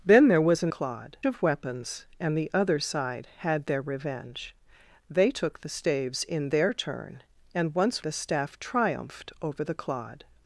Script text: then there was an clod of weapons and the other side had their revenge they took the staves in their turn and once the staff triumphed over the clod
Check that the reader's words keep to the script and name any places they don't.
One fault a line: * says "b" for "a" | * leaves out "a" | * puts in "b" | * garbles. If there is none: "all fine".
all fine